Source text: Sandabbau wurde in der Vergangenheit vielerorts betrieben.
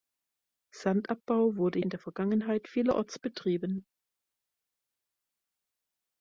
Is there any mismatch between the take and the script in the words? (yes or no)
no